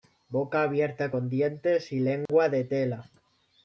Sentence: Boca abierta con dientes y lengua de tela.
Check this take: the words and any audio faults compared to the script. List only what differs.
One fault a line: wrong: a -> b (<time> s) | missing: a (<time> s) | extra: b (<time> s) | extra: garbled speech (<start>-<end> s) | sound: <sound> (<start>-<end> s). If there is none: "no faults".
sound: dropout (2.3-2.3 s)